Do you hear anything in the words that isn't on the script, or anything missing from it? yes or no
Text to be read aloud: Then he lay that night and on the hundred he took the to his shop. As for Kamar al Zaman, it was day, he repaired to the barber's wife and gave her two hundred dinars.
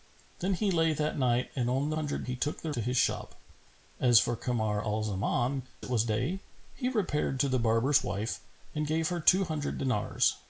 no